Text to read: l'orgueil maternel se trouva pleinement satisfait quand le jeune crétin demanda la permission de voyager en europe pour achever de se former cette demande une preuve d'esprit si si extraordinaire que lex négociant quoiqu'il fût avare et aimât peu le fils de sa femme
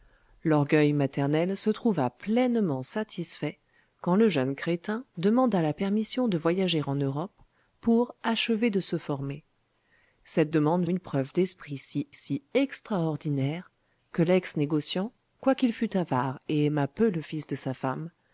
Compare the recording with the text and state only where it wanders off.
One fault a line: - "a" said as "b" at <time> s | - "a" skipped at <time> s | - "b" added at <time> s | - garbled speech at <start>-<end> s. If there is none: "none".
none